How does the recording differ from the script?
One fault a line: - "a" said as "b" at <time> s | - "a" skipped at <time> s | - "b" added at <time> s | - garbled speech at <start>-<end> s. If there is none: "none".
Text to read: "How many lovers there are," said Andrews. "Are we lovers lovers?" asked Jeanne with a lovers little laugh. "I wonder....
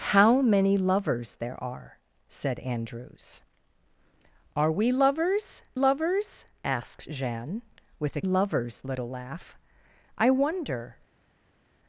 none